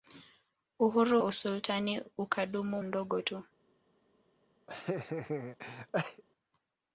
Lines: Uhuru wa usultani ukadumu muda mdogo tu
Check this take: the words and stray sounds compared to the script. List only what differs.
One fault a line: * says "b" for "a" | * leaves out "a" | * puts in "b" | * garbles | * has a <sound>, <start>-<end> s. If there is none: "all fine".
* leaves out "wa"
* leaves out "muda"
* has a laugh, 4.7-6.2 s